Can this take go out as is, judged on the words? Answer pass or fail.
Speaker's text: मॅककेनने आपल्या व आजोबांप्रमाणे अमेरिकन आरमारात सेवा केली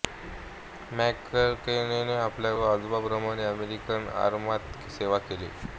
pass